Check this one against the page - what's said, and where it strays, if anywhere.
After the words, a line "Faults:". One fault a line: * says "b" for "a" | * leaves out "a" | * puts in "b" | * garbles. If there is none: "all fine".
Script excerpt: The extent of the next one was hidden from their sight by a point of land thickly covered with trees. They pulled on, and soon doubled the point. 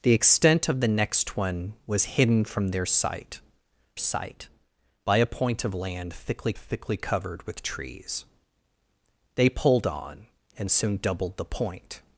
The extent of the next one was hidden from their sight sight by a point of land thickly thickly covered with trees. They pulled on, and soon doubled the point.
Faults:
* puts in "sight"
* puts in "thickly"